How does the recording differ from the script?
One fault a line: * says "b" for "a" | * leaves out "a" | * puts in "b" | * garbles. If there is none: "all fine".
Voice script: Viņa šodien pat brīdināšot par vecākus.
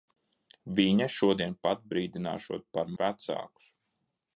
all fine